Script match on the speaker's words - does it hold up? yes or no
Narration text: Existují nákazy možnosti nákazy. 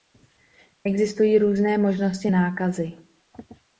no